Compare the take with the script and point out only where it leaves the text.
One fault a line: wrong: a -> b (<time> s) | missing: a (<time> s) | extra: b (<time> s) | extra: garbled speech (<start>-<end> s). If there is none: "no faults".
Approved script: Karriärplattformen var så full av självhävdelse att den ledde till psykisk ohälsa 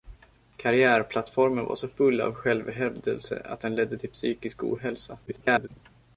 extra: garbled speech (5.3-5.7 s)